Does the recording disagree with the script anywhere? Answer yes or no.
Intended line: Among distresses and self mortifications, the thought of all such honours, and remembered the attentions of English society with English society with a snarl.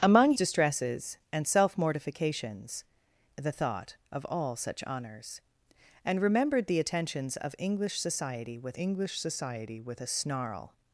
no